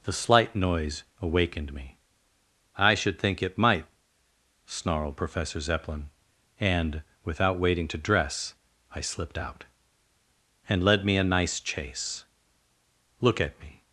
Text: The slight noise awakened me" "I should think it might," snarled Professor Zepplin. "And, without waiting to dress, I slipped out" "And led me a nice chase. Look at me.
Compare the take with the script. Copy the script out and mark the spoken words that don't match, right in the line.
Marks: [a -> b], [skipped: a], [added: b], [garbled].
The slight noise awakened me" "I should think it might," snarled Professor Zepplin. "And, without waiting to dress, I slipped out" "And led me a nice chase. Look at me.